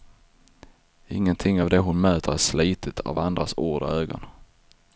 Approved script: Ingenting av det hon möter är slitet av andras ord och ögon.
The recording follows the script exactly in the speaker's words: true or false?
true